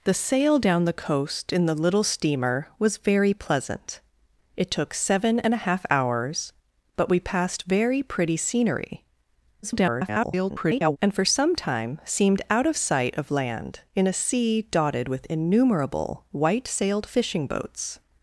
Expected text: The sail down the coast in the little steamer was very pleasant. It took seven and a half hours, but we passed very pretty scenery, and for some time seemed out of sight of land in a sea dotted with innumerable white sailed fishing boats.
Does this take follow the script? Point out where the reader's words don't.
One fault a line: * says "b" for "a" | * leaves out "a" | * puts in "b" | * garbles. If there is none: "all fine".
* garbles